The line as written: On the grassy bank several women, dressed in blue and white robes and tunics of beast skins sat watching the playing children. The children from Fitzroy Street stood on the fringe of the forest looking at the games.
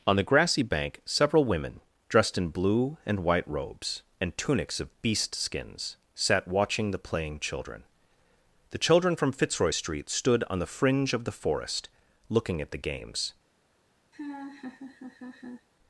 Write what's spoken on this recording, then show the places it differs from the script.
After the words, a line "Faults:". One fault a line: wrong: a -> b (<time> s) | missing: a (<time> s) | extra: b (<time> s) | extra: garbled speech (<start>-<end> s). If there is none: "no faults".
On the grassy bank several women, dressed in blue and white robes and tunics of beast skins sat watching the playing children. The children from Fitzroy Street stood on the fringe of the forest looking at the games.
Faults:
no faults